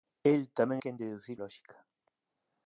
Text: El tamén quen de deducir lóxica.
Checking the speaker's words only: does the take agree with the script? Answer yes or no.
yes